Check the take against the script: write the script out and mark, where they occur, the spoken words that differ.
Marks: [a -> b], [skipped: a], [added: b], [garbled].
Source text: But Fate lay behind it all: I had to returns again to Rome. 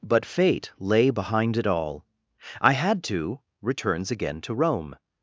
But Fate lay behind it all: I had to returns again to Rome.